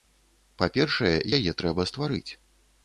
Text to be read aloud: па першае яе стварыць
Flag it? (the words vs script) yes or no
yes